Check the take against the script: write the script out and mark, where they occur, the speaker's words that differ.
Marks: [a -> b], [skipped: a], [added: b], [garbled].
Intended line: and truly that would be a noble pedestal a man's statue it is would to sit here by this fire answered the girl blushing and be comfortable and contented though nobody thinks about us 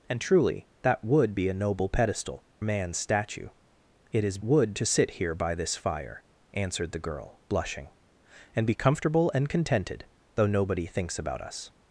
and truly that would be a noble pedestal a man's statue it is would to sit here by this fire answered the girl blushing and be comfortable and contented though nobody thinks about us